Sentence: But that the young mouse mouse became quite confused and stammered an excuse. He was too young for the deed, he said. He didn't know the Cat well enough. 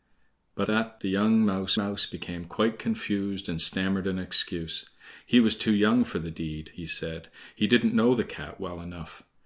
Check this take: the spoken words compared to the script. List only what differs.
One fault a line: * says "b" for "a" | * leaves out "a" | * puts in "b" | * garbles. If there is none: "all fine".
all fine